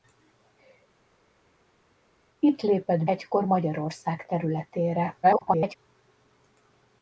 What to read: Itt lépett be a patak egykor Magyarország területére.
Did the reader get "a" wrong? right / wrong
wrong